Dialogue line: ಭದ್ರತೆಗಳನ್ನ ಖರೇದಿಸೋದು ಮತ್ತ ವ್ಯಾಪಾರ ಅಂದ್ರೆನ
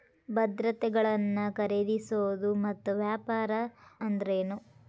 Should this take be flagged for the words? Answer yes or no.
no